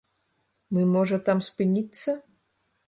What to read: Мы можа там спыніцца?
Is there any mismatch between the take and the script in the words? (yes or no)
no